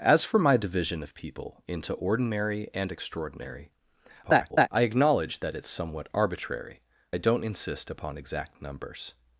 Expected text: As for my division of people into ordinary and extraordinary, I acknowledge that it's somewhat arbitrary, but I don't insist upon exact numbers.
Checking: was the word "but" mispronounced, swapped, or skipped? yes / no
yes